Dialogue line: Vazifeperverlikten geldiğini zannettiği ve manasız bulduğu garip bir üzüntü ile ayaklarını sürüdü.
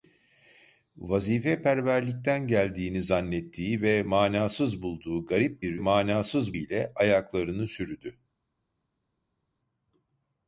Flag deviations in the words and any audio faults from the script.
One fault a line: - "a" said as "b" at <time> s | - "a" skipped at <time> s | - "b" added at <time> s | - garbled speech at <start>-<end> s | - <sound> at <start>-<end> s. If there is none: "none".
- "üzüntü" said as "manasız" at 5.8 s